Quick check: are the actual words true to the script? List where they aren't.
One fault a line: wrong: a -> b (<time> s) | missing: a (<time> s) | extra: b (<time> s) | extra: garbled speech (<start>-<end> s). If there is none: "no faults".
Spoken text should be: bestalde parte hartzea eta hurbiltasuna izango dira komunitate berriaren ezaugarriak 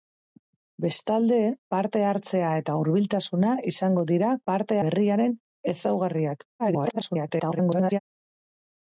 wrong: komunitate -> parte (4.5 s)
extra: garbled speech (6.6-8.0 s)